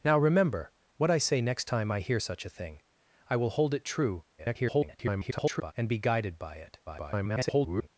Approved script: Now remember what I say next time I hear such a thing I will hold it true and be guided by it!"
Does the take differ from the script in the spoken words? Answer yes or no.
yes